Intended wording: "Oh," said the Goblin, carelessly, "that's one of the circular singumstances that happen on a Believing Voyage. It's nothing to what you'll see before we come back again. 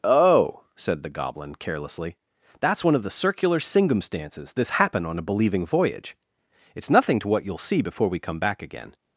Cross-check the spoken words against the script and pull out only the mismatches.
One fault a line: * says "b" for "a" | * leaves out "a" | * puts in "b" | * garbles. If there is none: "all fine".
* says "this" for "that"